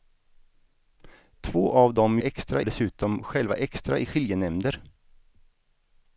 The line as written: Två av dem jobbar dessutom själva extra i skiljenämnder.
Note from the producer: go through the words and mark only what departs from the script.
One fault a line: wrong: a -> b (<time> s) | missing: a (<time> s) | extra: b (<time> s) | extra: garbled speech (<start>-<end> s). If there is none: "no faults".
wrong: jobbar -> extra (2.2 s)